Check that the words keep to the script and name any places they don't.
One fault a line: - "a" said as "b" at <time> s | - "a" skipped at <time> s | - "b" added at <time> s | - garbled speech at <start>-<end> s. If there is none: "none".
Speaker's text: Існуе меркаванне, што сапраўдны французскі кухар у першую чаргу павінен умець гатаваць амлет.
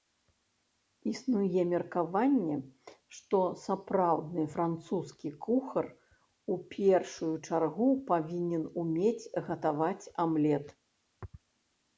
none